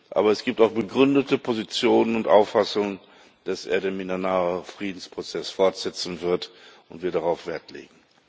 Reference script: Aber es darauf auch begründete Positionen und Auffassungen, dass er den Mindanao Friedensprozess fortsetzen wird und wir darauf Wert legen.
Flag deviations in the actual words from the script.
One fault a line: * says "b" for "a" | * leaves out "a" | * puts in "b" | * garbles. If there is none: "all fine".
* says "gibt" for "darauf"